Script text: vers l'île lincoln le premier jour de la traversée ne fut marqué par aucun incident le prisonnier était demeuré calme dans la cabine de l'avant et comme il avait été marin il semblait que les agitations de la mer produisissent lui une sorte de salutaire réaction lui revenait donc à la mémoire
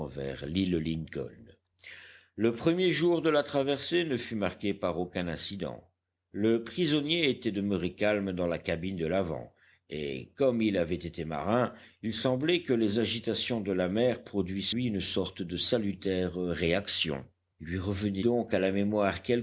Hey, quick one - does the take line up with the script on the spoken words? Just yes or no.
yes